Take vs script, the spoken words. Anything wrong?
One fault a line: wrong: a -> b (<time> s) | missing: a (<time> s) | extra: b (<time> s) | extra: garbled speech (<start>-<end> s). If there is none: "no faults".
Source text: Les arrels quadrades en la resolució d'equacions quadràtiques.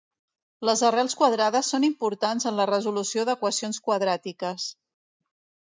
extra: són importants (1.7 s)